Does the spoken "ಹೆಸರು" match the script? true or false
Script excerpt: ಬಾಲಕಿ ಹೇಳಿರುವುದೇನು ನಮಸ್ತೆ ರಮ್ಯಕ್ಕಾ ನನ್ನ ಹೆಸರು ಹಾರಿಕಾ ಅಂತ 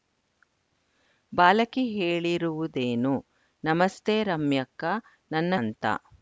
false